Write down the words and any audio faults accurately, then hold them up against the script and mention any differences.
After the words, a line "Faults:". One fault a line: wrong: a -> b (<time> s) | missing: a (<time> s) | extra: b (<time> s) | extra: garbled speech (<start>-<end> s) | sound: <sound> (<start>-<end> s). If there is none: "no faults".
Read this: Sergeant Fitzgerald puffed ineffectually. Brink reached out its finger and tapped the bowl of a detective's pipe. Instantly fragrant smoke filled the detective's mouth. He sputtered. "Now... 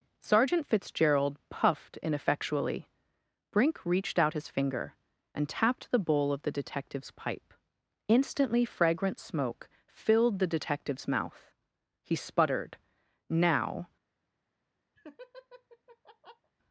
Sergeant Fitzgerald puffed ineffectually. Brink reached out his finger and tapped the bowl of the detective's pipe. Instantly fragrant smoke filled the detective's mouth. He sputtered. "Now...
Faults:
wrong: its -> his (4.3 s)
wrong: a -> the (6.4 s)
sound: laugh (15.0-16.5 s)